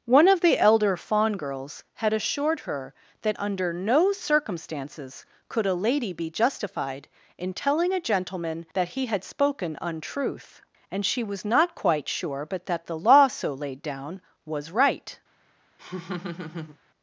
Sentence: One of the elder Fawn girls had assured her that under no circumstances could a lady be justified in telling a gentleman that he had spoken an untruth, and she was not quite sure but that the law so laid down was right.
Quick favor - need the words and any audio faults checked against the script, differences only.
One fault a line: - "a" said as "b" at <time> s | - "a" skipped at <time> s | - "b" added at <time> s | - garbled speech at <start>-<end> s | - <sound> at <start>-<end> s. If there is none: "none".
- "an" skipped at 9.8 s
- laugh at 15.8-16.8 s